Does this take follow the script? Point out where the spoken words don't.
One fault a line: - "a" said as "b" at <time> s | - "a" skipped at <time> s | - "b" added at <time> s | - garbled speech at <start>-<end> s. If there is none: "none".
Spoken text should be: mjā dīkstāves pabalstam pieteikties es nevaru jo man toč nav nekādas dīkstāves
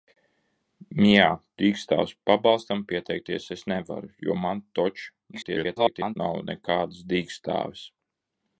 - garbled speech at 5.3-6.2 s